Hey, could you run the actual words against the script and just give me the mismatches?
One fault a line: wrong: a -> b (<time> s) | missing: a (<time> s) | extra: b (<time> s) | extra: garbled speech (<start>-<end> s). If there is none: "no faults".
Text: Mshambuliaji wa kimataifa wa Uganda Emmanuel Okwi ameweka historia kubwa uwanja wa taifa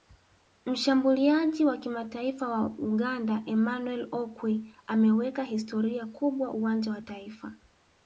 no faults